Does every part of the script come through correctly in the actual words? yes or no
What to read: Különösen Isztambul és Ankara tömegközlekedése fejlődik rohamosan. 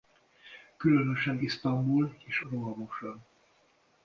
no